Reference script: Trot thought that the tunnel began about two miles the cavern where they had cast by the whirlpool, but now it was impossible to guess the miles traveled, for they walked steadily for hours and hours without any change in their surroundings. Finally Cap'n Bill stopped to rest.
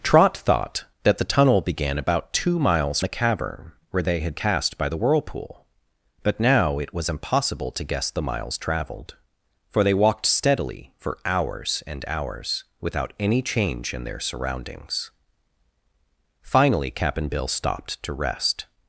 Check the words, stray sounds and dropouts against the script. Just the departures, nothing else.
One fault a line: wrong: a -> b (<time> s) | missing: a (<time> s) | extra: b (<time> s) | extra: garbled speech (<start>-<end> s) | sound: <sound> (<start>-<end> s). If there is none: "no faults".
no faults